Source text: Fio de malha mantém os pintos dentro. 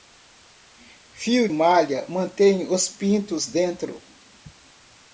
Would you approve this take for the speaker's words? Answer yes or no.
no